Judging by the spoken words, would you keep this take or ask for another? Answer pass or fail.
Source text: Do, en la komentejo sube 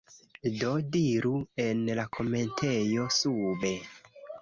fail